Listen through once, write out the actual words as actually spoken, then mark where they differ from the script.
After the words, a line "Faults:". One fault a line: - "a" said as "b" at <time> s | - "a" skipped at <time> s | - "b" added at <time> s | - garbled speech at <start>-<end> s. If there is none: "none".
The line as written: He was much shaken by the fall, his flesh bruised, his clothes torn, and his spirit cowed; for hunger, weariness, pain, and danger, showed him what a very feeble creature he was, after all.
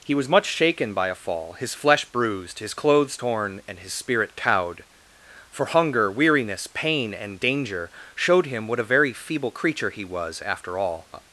He was much shaken by a fall, his flesh bruised, his clothes torn, and his spirit cowed; for hunger, weariness, pain, and danger, showed him what a very feeble creature he was, after all.
Faults:
- "the" said as "a" at 1.1 s